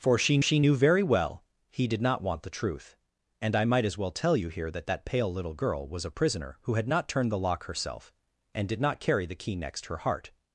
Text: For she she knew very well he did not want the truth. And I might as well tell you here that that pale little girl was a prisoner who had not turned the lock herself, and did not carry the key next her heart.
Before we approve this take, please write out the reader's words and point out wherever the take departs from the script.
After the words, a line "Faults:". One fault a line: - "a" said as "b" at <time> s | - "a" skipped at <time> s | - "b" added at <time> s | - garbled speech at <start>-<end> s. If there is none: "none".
For she she knew very well he did not want the truth. And I might as well tell you here that that pale little girl was a prisoner who had not turned the lock herself, and did not carry the key next her heart.
Faults:
none